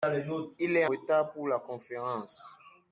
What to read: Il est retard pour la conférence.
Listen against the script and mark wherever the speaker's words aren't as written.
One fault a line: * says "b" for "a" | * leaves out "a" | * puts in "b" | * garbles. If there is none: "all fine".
all fine